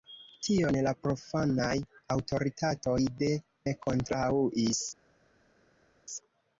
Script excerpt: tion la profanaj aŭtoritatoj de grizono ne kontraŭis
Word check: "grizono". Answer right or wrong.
wrong